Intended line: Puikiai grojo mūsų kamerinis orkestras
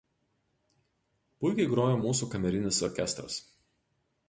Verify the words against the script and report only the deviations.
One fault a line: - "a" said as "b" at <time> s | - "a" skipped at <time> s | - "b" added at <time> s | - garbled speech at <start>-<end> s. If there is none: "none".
none